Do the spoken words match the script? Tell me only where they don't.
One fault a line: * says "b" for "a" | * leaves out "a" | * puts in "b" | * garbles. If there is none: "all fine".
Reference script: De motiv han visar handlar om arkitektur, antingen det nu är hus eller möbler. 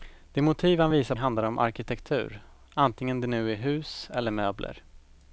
all fine